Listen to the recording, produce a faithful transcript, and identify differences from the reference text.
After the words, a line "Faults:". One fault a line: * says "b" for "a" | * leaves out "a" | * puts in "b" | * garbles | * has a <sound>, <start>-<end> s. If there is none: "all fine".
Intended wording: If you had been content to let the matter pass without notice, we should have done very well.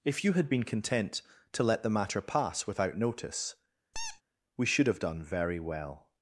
If you had been content to let the matter pass without notice, we should have done very well.
Faults:
* has a squeak, 3.9-4.2 s